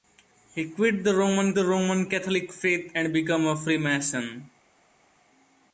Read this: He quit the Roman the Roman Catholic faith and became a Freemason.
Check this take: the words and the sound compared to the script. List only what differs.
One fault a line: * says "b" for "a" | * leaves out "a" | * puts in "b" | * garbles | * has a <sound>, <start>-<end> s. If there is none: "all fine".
all fine